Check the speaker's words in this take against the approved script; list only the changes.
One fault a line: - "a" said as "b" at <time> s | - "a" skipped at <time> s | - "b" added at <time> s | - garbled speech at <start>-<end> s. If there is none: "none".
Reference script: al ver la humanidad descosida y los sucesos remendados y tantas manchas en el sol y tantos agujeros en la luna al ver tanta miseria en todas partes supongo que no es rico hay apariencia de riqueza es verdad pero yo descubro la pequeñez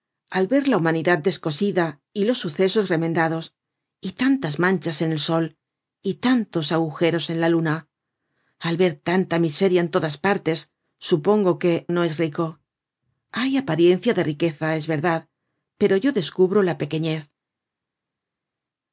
none